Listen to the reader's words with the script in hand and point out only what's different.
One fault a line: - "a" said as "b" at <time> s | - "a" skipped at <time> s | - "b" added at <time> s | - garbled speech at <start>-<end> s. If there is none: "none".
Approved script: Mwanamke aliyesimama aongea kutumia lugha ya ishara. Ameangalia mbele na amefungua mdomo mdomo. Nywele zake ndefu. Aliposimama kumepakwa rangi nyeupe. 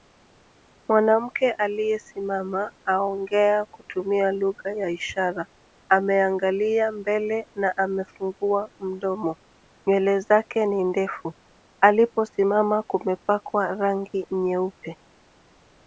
- "mdomo" skipped at 9.4 s
- "ni" added at 10.7 s